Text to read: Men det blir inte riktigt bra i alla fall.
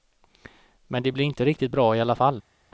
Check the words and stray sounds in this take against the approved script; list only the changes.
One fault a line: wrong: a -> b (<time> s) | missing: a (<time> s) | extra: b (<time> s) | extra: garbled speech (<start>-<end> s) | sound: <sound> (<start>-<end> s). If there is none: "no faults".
no faults